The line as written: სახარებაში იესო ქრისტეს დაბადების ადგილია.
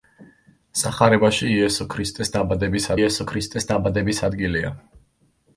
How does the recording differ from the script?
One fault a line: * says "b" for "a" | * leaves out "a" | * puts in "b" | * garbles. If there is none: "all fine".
* puts in "იესო ქრისტეს დაბადების"